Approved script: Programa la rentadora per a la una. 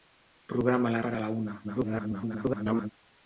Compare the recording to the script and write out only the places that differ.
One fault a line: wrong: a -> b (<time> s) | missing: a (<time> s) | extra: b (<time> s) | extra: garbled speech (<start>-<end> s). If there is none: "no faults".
missing: rentadora (1.0 s)
extra: garbled speech (1.6-2.9 s)